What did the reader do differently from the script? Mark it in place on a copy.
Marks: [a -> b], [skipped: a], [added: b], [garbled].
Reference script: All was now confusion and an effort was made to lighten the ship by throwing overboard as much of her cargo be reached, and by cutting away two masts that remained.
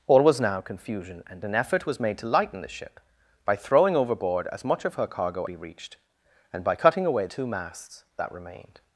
All was now confusion and an effort was made to lighten the ship by throwing overboard as much of her cargo be reached, and by cutting away two masts that remained.